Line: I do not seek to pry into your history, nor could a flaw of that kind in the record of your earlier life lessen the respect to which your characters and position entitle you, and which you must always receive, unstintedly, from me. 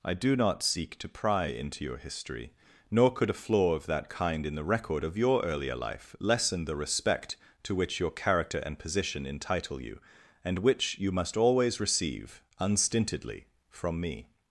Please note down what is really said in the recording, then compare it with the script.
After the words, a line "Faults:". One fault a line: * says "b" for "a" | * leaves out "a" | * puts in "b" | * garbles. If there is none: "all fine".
I do not seek to pry into your history, nor could a flaw of that kind in the record of your earlier life lessen the respect to which your character and position entitle you, and which you must always receive, unstintedly, from me.
Faults:
* says "character" for "characters"